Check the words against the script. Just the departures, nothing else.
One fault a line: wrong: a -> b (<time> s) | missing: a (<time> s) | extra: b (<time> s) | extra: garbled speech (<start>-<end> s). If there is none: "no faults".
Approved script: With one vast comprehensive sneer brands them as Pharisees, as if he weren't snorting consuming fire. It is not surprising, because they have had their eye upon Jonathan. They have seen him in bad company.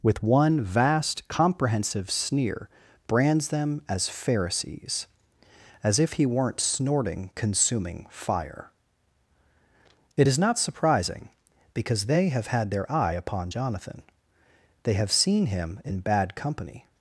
no faults